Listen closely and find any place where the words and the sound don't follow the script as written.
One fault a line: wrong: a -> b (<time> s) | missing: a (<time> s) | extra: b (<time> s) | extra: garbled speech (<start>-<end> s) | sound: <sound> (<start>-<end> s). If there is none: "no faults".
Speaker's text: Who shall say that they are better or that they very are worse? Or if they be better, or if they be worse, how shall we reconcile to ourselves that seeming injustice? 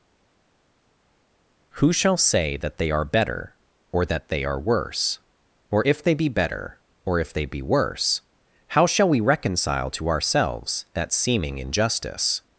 missing: very (4.4 s)